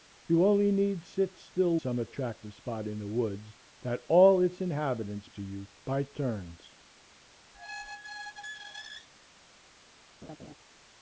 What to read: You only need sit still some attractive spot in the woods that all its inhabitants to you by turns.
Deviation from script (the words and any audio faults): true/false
true